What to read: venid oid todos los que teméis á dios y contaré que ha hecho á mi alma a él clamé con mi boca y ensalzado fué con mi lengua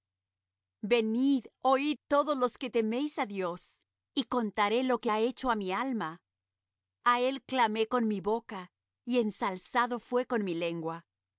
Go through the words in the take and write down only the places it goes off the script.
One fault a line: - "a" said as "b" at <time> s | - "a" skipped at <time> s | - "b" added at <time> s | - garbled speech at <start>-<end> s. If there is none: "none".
- "lo" added at 4.8 s